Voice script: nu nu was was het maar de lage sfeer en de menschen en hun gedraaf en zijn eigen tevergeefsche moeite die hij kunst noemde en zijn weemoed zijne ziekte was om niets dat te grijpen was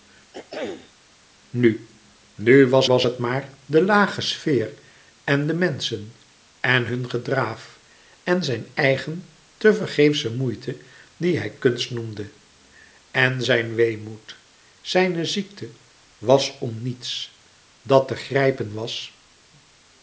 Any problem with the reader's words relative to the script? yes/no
no